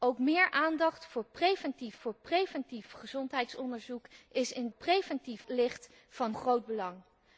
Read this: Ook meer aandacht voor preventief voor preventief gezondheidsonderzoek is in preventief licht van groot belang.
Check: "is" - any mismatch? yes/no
no